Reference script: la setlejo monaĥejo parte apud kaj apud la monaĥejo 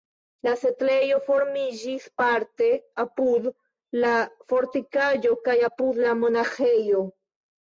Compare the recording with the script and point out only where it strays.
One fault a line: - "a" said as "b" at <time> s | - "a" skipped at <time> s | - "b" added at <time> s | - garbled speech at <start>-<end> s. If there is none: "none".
- "monaĥejo" said as "formiĝis" at 1.2 s
- "la fortikaĵo" added at 4.0 s